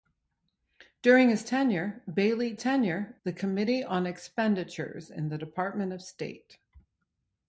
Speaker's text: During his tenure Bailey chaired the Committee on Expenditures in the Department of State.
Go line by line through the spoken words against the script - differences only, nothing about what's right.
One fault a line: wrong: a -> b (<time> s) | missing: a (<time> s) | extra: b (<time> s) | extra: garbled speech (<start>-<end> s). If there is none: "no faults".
wrong: chaired -> tenure (2.6 s)